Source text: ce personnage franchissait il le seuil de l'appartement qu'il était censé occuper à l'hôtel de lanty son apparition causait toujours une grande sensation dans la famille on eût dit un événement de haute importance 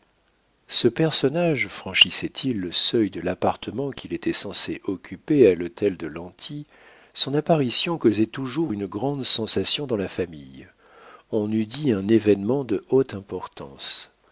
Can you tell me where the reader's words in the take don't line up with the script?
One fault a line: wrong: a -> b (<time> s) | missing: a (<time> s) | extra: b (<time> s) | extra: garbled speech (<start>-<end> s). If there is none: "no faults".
no faults